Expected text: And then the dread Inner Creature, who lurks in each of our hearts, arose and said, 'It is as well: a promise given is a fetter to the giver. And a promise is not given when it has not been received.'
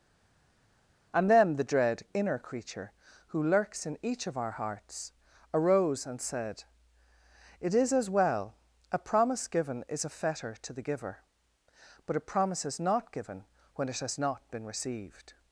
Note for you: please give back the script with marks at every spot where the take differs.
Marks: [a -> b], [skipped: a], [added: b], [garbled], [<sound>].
And then the dread Inner Creature, who lurks in each of our hearts, arose and said, 'It is as well: a promise given is a fetter to the giver. [And -> But] a promise is not given when it has not been received.'